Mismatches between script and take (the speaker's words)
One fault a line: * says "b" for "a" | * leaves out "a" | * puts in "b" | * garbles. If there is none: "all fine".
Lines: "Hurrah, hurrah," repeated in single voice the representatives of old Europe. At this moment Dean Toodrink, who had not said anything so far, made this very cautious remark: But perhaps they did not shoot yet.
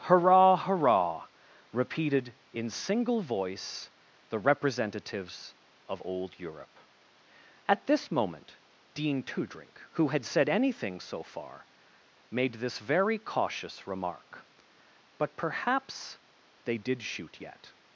* leaves out "not"
* leaves out "not"